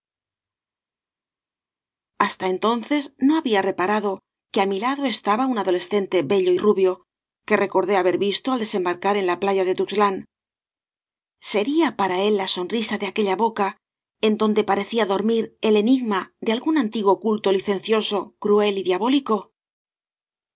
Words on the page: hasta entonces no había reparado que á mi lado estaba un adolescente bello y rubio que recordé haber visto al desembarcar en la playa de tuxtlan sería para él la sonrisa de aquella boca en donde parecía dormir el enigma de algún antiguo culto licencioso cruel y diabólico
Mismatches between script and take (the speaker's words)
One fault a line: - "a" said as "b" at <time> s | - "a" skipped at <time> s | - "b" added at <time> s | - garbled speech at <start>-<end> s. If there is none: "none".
none